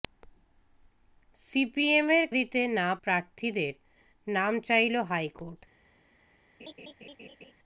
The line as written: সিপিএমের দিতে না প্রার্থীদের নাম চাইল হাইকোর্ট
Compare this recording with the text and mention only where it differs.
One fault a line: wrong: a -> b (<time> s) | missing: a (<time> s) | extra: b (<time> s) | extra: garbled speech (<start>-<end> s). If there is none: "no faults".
no faults